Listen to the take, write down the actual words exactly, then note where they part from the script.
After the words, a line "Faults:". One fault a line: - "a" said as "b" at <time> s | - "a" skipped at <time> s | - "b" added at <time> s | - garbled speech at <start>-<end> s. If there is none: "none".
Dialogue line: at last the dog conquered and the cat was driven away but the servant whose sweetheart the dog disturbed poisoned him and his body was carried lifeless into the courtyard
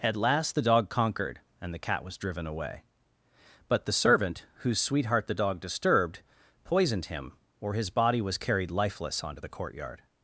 at last the dog conquered and the cat was driven away but the servant whose sweetheart the dog disturbed poisoned him or his body was carried lifeless onto the courtyard
Faults:
- "and" said as "or" at 7.6 s
- "into" said as "onto" at 9.2 s